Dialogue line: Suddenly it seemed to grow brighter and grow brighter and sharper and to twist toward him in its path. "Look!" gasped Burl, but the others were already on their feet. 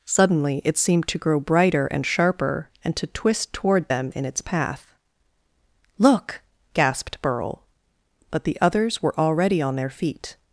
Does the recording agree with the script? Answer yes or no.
no